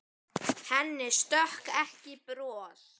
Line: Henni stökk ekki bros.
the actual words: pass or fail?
pass